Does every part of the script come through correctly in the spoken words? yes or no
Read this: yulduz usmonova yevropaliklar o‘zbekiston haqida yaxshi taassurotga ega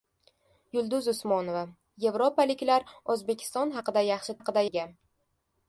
no